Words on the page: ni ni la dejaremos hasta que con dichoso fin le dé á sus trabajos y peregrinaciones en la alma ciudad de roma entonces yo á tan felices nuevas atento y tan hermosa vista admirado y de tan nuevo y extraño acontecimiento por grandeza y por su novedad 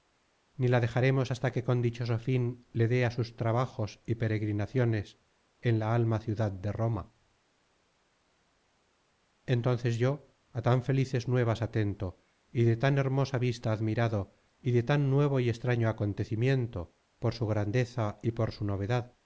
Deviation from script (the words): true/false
true